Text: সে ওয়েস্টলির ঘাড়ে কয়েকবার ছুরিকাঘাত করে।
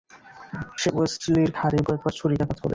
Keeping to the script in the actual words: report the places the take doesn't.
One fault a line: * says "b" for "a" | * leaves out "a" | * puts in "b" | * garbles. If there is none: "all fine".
all fine